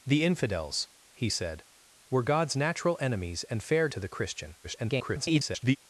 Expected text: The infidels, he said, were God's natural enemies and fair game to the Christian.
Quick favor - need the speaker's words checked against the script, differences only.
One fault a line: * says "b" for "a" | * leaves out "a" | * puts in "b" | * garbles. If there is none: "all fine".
* leaves out "game"
* garbles